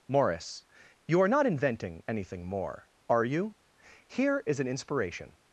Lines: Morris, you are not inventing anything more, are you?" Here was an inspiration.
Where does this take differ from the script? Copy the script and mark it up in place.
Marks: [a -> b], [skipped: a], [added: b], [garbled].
Morris, you are not inventing anything more, are you?" Here [was -> is] an inspiration.